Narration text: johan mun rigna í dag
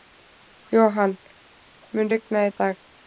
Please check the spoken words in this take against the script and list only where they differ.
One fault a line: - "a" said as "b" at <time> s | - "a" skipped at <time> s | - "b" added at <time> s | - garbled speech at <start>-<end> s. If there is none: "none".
none